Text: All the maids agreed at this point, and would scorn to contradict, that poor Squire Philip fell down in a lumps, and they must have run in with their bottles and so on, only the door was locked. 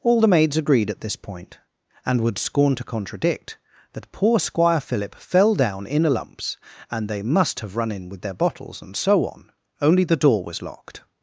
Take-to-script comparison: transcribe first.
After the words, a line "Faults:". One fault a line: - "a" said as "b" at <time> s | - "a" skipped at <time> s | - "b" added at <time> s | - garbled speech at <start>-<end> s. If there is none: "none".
All the maids agreed at this point, and would scorn to contradict, that poor Squire Philip fell down in a lumps, and they must have run in with their bottles and so on, only the door was locked.
Faults:
none